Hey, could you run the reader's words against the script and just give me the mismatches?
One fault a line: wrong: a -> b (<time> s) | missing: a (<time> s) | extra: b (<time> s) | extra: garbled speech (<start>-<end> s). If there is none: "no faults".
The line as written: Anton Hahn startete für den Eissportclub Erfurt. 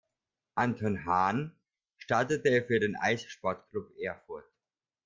no faults